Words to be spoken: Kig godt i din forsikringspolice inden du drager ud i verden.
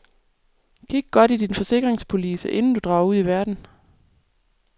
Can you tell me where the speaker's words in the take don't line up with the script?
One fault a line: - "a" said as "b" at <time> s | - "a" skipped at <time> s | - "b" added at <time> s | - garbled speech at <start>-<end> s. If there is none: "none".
none